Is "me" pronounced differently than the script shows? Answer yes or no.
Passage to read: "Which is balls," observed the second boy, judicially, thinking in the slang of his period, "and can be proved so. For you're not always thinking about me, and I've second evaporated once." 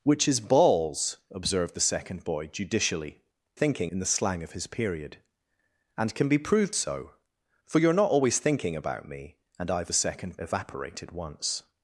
no